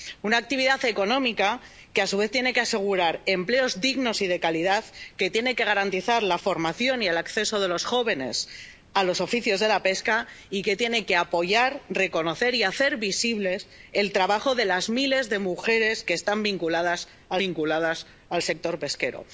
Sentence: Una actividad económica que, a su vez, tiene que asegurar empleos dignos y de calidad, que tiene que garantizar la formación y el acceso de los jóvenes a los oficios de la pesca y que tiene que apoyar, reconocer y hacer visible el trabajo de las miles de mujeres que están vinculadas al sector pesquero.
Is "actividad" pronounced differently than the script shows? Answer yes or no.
no